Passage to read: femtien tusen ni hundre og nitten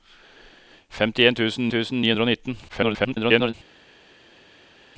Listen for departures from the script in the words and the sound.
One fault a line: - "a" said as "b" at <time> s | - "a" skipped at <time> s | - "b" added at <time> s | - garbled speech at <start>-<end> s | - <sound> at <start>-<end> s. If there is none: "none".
- "tusen" added at 1.7 s
- garbled speech at 2.7-3.5 s